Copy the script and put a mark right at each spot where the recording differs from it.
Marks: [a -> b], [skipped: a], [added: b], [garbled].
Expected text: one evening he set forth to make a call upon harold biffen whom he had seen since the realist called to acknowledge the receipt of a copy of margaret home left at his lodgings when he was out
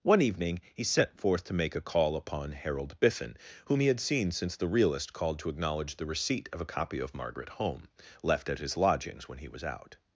one evening he set forth to make a call upon harold biffen whom he had seen since the realist called to acknowledge the receipt of a copy of margaret home left at his lodgings when he was out